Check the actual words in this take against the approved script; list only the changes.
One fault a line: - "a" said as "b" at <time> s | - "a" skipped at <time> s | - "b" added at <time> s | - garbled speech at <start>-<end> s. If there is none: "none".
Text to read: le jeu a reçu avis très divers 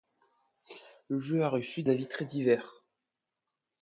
none